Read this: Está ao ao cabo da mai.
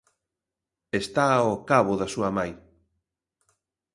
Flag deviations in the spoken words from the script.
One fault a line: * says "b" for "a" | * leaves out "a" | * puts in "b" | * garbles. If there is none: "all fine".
* leaves out "ao"
* puts in "súa"